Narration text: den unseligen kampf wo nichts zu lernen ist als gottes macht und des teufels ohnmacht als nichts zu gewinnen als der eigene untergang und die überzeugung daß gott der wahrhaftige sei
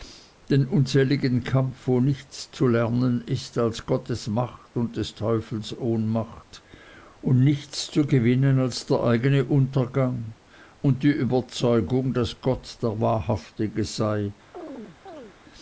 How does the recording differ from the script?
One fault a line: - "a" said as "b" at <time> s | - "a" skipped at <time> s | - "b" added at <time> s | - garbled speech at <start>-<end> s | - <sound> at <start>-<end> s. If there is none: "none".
- "als" said as "und" at 7.2 s
- chirp at 14.5-15.4 s